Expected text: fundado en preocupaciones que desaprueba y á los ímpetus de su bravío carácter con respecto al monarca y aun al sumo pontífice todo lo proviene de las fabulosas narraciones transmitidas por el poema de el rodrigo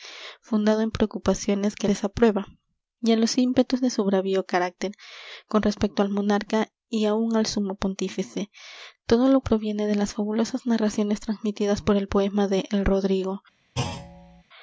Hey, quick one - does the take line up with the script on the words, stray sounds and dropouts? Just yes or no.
no